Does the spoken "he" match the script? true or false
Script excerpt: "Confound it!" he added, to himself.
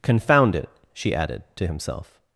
false